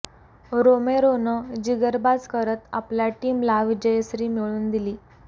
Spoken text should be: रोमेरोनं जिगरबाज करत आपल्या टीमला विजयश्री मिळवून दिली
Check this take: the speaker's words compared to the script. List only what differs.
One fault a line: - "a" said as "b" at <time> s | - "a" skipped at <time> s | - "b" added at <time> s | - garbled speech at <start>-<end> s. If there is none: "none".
none